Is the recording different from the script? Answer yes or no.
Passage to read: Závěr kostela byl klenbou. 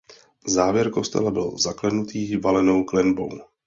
yes